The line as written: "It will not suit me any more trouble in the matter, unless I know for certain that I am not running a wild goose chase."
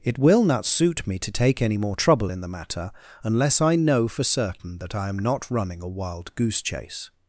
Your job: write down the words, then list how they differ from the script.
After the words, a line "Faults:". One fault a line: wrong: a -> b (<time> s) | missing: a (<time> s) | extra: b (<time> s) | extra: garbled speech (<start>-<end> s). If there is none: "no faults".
"It will not suit me to take any more trouble in the matter, unless I know for certain that I am not running a wild goose chase."
Faults:
extra: to take (1.2 s)